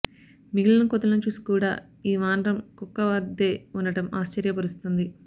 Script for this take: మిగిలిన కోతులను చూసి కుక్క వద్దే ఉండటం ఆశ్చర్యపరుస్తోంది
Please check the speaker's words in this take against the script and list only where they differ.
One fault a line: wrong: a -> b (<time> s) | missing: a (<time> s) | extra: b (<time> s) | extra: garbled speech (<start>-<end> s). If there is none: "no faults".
extra: కూడా ఈ వానరం (1.5 s)